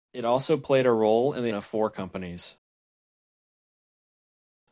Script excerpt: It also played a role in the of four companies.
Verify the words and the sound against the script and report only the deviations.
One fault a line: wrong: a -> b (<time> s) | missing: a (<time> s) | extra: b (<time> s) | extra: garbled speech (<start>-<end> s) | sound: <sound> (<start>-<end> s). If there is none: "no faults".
no faults